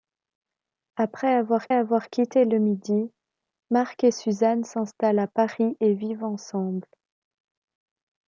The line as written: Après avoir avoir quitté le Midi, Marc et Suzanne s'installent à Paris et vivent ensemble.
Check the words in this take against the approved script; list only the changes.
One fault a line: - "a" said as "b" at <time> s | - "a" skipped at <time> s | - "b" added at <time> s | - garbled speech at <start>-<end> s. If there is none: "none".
none